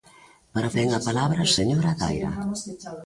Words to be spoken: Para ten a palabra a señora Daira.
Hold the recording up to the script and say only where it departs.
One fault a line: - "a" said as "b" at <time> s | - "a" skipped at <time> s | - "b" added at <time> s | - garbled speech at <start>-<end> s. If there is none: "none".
none